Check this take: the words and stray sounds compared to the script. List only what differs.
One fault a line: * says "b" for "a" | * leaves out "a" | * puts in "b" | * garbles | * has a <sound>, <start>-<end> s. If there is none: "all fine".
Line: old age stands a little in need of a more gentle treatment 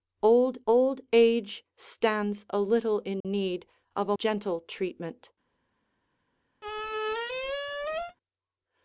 * puts in "old"
* has a dropout, 3.2-3.2 s
* leaves out "more"
* has a squeak, 6.6-8.2 s